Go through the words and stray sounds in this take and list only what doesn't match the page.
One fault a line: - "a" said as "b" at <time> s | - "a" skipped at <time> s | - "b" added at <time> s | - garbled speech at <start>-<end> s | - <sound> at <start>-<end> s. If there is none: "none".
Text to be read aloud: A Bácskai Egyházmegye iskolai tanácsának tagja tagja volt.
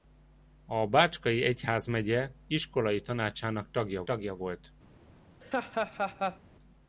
- laugh at 5.4-6.4 s